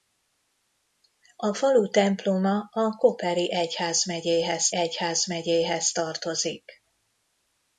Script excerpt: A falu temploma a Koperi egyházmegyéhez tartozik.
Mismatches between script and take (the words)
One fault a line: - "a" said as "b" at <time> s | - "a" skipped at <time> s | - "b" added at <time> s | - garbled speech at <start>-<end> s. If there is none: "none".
- "egyházmegyéhez" added at 4.7 s